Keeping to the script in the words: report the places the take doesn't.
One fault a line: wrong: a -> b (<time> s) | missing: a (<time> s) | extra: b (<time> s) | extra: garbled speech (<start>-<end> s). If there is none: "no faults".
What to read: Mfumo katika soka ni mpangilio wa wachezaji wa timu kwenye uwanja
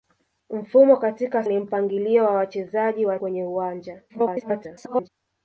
missing: soka (1.4 s)
missing: timu (3.2 s)
extra: garbled speech (4.1-5.1 s)